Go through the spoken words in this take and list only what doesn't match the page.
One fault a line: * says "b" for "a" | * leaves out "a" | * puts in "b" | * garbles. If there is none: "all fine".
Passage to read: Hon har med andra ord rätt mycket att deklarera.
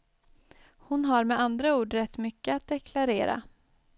all fine